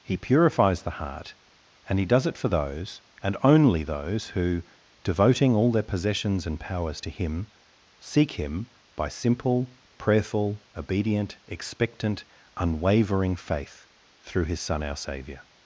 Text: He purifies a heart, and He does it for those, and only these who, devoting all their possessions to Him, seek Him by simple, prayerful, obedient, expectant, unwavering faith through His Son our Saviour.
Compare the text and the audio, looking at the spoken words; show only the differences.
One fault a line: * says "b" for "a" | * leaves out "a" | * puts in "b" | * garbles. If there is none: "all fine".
* says "the" for "a"
* says "those" for "these"
* puts in "and powers"